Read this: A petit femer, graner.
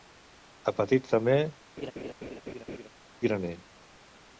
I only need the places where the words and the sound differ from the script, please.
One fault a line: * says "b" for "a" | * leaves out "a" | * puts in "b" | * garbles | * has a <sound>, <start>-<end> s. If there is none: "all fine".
* has a laugh, 1.8-2.9 s